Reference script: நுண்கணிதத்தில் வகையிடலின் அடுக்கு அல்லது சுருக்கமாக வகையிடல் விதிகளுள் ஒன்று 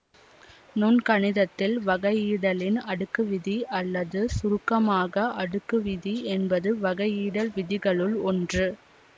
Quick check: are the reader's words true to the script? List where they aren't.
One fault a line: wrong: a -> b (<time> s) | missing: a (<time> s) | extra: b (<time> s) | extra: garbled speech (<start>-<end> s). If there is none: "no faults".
extra: விதி (3.3 s)
extra: அடுக்கு விதி என்பது (5.4 s)